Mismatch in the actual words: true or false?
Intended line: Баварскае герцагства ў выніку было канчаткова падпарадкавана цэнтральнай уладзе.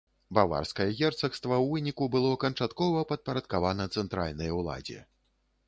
false